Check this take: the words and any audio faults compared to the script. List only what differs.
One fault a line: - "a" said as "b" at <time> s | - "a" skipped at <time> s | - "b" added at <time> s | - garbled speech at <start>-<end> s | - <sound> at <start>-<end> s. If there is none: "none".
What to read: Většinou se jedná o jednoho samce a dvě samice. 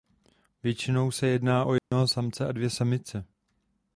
- dropout at 1.8-1.9 s